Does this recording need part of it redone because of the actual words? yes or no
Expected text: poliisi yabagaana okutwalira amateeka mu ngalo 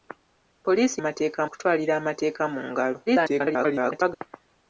yes